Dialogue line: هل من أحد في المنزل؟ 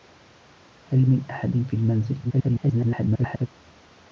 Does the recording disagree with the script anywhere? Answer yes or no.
yes